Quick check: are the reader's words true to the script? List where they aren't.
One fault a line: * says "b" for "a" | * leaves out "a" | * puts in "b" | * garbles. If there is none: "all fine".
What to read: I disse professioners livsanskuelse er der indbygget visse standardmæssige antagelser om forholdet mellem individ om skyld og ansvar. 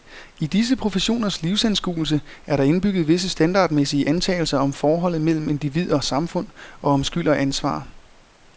* puts in "og samfund og"